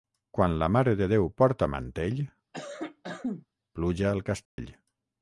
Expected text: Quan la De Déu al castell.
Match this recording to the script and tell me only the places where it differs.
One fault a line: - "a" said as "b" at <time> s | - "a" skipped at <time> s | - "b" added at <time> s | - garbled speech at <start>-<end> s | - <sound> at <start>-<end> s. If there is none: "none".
- "Mare" added at 0.8 s
- "porta mantell pluja" added at 1.4 s
- cough at 2.5-3.5 s
- dropout at 4.5-4.6 s